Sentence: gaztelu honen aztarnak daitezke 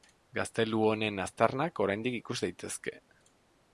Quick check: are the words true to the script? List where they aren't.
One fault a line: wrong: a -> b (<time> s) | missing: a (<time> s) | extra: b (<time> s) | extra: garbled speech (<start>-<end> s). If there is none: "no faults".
extra: oraindik ikus (1.9 s)